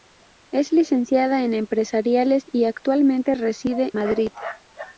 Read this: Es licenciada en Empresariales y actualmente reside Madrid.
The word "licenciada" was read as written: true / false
true